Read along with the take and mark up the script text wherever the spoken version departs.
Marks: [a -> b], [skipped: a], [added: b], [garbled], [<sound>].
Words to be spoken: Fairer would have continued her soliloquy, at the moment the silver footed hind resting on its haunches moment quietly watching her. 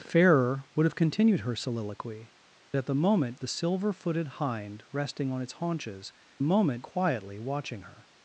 Fairer would have continued her soliloquy, at the moment the silver footed hind resting on its haunches moment quietly watching her.